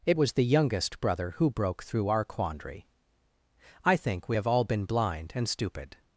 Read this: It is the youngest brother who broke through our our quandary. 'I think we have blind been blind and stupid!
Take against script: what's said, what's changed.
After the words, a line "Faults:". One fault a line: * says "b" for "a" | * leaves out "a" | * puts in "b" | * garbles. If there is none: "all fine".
It was the youngest brother who broke through our quandary. 'I think we have all been blind and stupid!
Faults:
* says "was" for "is"
* leaves out "our"
* says "all" for "blind"